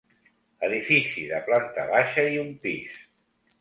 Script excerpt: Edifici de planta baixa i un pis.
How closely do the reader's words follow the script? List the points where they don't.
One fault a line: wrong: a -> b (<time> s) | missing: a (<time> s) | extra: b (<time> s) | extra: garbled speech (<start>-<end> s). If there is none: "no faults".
no faults